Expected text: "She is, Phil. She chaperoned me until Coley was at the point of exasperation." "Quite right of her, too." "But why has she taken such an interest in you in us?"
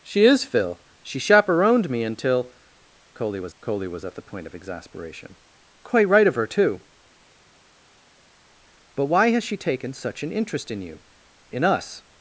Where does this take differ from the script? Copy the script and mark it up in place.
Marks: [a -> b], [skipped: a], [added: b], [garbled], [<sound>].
"She is, Phil. She chaperoned me until Coley was [added: Coley was] at the point of exasperation." "Quite right of her, too." "But why has she taken such an interest in you in us?"